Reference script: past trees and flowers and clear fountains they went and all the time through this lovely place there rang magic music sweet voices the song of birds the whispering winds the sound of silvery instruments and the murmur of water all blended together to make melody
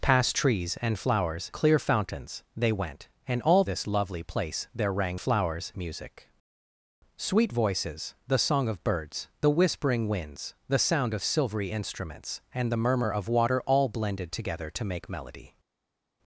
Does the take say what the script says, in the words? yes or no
no